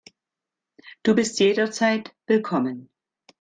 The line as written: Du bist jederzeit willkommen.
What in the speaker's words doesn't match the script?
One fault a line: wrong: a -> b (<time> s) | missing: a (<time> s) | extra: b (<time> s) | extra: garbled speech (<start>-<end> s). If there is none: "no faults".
no faults